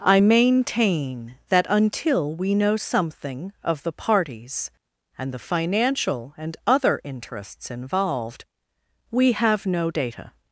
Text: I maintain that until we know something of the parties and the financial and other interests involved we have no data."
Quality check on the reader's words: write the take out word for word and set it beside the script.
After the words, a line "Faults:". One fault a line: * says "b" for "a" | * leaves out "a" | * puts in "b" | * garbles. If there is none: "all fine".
I maintain that until we know something of the parties and the financial and other interests involved we have no data."
Faults:
all fine